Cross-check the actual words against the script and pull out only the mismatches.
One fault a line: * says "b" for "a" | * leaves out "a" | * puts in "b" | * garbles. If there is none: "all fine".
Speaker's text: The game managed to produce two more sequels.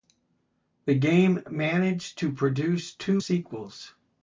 * leaves out "more"